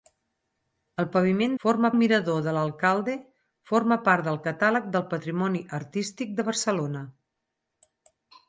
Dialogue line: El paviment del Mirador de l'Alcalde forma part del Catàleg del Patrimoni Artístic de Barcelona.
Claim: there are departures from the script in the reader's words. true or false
true